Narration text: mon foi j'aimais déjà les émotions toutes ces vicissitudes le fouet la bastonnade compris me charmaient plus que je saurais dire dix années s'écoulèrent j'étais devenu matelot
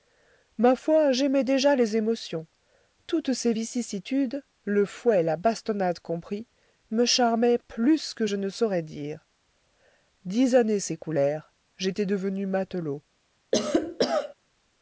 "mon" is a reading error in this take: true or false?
true